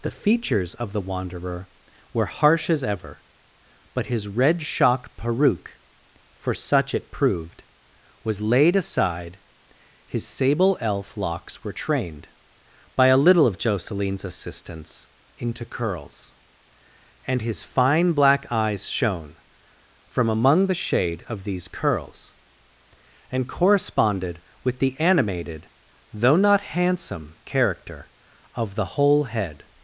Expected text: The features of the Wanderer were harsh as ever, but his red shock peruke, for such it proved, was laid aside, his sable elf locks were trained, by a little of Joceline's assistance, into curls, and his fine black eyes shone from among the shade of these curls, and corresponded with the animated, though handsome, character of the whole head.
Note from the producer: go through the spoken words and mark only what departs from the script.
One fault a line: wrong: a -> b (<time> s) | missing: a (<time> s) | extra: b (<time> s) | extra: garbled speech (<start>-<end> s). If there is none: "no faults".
extra: not (26.4 s)